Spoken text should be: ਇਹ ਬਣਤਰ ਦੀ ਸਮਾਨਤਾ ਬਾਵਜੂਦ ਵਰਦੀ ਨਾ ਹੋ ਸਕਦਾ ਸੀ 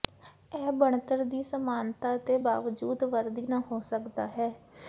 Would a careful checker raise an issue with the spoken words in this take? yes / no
yes